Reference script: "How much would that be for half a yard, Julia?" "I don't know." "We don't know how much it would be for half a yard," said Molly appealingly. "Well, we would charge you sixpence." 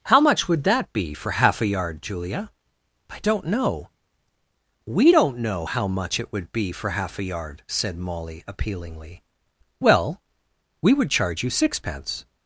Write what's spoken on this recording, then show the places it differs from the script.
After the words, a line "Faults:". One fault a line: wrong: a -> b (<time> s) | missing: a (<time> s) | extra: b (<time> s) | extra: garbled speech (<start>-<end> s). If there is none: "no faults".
"How much would that be for half a yard, Julia?" "I don't know." "We don't know how much it would be for half a yard," said Molly appealingly. "Well, we would charge you sixpence."
Faults:
no faults